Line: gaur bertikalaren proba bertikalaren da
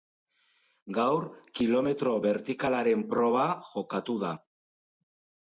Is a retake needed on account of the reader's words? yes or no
yes